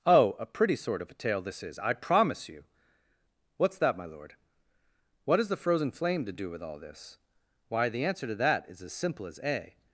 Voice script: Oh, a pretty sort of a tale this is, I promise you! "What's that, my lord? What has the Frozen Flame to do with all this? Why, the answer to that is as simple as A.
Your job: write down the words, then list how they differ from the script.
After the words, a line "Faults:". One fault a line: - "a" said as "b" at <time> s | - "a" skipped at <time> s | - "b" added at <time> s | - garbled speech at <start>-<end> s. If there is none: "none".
Oh, a pretty sort of a tale this is, I promise you! "What's that, my lord? What has the Frozen Flame to do with all this? Why, the answer to that is as simple as A.
Faults:
none